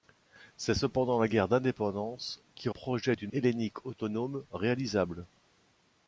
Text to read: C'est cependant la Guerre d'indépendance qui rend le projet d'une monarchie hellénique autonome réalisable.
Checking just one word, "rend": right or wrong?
wrong